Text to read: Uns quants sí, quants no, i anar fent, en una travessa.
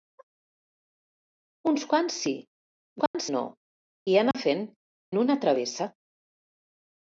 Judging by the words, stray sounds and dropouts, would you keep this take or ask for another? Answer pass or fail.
fail